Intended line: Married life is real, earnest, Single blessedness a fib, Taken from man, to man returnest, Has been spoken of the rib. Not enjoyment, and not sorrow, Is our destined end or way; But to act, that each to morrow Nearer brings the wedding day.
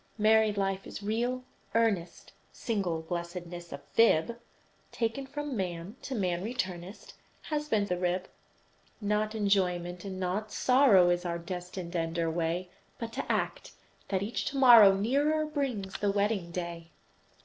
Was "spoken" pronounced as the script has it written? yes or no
no